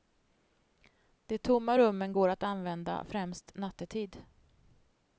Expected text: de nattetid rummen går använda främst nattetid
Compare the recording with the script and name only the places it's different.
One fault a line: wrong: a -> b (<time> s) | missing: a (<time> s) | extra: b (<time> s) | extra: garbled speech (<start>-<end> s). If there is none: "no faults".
wrong: nattetid -> tomma (1.4 s)
extra: att (2.3 s)